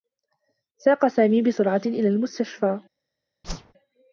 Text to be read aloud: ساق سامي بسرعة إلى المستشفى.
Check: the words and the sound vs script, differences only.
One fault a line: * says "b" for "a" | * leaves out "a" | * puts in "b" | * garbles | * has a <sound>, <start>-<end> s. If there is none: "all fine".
* has a whoosh, 3.4-3.7 s